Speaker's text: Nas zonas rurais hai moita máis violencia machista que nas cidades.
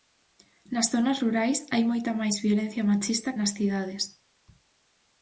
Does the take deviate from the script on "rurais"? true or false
false